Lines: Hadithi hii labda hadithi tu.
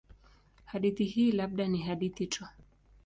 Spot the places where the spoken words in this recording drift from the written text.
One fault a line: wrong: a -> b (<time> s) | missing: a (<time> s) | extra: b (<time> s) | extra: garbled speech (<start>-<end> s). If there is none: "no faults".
extra: ni (1.7 s)